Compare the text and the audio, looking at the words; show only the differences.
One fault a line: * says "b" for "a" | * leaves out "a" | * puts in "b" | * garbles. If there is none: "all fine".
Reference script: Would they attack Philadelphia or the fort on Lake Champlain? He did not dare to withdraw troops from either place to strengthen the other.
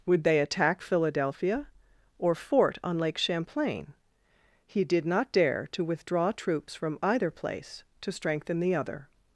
* leaves out "the"